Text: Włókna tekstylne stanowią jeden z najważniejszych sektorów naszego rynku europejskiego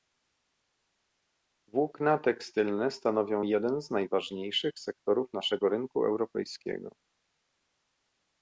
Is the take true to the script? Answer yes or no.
yes